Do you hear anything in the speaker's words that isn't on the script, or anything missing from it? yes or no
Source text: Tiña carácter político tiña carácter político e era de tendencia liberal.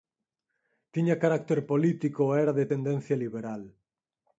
yes